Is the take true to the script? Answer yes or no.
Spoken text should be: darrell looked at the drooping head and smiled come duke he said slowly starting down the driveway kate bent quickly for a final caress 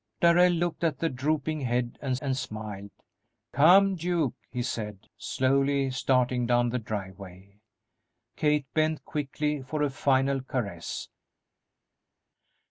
no